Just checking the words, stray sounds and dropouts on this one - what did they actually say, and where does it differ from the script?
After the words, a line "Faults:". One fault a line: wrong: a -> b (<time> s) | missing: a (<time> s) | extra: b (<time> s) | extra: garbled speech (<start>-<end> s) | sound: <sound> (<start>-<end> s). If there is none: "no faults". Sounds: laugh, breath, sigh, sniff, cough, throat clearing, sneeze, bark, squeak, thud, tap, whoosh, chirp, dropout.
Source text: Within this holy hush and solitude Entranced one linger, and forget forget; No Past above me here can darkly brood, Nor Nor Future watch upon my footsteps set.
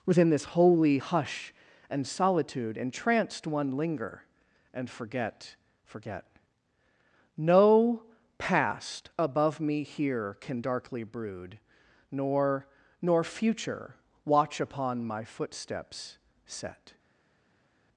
Within this holy hush and solitude Entranced one linger, and forget forget; No Past above me here can darkly brood, Nor Nor Future watch upon my footsteps set.
Faults:
no faults